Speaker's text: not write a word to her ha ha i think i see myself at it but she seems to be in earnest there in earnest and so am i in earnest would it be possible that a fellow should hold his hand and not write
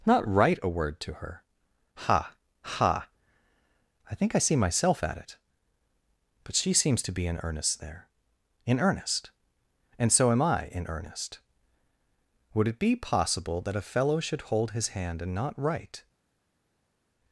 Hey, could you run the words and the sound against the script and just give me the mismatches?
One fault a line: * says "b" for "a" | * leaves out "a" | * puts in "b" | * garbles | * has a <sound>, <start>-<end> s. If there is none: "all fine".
all fine